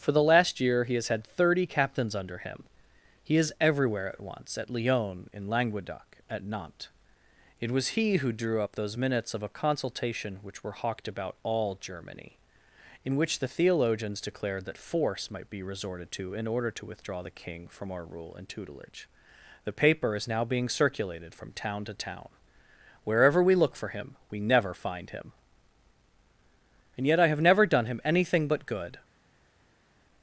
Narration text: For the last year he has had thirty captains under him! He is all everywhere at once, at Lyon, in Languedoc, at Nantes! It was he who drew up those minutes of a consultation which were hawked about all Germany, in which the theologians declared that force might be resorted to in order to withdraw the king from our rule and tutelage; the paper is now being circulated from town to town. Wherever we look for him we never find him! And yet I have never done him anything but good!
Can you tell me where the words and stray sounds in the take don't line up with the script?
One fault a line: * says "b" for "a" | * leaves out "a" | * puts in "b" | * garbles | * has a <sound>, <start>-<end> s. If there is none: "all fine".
* leaves out "all"